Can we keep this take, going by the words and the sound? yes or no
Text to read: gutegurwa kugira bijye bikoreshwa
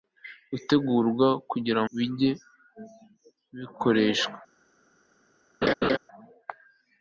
no